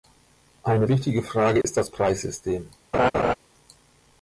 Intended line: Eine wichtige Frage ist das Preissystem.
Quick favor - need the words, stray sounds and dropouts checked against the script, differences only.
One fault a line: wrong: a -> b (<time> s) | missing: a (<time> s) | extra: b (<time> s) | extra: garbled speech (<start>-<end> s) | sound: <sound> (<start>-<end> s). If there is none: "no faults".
sound: dropout (1.6-1.6 s)
sound: laugh (2.9-3.3 s)